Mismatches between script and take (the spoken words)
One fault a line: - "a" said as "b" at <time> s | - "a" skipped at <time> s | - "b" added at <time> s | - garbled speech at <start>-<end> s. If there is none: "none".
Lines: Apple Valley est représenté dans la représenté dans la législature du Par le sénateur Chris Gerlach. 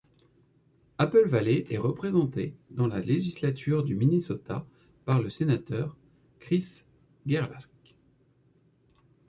- "représenté dans la" skipped at 3.0 s
- "Minnesota" added at 3.9 s